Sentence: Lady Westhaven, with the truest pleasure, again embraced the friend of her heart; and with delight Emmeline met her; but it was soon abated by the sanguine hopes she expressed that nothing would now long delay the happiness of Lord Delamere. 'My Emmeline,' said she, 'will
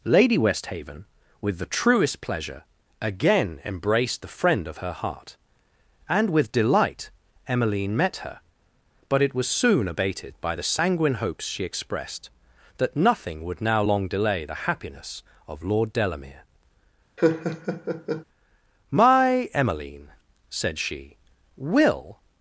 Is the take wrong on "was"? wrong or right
right